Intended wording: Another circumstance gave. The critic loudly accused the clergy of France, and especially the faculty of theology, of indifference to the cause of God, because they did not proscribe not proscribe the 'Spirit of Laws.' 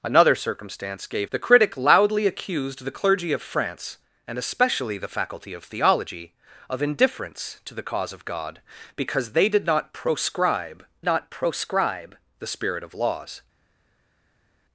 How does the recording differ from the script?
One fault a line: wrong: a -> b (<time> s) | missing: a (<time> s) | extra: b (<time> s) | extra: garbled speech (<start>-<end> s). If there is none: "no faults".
no faults